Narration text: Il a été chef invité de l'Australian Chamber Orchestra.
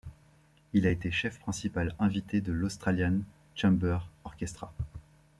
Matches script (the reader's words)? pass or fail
fail